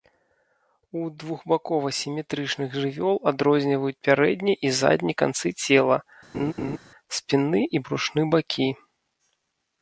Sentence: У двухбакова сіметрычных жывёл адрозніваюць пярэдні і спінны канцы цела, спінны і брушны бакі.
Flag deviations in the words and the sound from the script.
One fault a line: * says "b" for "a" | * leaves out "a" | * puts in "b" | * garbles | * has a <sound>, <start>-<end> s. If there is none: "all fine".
* says "задні" for "спінны"
* has a laugh, 6.3-6.8 s